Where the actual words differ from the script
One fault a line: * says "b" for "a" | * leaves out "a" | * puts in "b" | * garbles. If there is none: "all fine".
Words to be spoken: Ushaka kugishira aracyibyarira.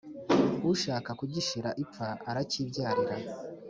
* puts in "ipfa"